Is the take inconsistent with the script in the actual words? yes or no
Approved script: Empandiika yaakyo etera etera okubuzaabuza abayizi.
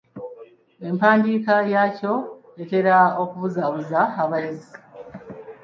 yes